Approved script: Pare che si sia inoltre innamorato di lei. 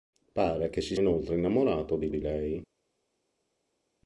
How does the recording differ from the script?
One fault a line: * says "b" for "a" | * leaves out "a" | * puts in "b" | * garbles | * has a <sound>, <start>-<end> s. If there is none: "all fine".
* leaves out "sia"
* puts in "di"